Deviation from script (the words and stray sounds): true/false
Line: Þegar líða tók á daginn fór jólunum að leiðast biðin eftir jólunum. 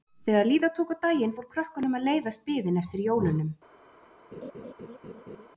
true